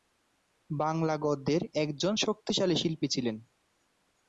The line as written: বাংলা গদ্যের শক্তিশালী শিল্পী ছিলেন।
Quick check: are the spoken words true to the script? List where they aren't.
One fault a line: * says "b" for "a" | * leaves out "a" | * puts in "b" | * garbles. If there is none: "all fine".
* puts in "একজন"